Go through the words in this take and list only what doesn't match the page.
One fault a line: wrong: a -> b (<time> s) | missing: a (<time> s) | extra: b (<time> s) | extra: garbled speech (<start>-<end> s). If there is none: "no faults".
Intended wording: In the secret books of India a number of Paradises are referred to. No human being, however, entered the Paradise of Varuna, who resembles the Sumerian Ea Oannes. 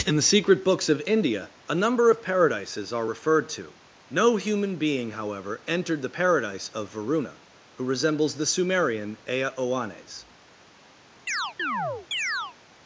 no faults